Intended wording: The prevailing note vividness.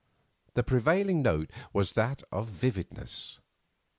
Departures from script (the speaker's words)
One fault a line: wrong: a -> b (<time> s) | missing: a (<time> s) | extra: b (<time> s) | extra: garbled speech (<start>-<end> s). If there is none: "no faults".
extra: was that of (1.7 s)